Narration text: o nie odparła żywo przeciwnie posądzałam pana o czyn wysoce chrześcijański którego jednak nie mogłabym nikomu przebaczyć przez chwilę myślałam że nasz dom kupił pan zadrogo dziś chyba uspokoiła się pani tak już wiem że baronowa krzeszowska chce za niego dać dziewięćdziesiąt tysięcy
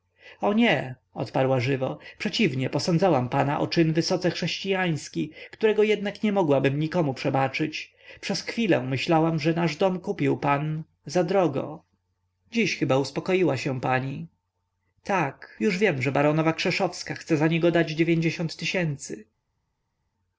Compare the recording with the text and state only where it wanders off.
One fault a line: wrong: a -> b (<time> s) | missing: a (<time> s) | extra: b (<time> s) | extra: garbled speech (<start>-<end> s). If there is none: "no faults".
no faults